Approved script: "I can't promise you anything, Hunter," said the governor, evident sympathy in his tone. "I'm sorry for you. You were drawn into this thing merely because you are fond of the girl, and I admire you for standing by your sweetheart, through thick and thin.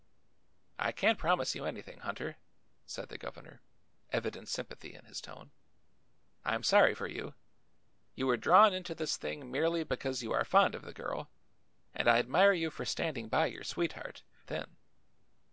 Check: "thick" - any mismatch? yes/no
yes